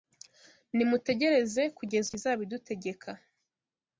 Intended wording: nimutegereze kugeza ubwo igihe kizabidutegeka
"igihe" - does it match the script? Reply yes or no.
no